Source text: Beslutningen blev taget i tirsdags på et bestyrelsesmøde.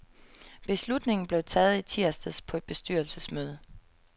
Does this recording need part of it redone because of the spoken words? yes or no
no